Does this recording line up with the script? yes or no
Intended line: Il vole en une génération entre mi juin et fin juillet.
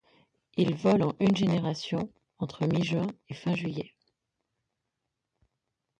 yes